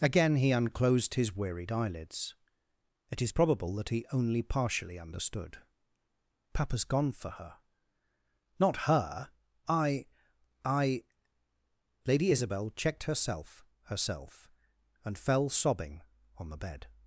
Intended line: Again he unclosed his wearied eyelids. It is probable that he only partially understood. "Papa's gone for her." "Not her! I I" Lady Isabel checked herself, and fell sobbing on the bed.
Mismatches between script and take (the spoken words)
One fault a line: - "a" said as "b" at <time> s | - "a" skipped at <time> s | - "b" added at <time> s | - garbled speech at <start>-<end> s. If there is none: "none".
- "herself" added at 13.9 s